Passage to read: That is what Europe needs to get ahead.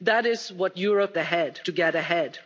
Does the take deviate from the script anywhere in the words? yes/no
yes